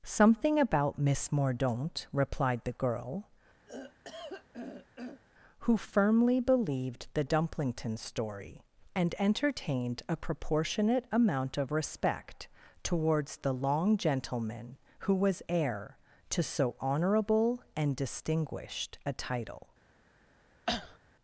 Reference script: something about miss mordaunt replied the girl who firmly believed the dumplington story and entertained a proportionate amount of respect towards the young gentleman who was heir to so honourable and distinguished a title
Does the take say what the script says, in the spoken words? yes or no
no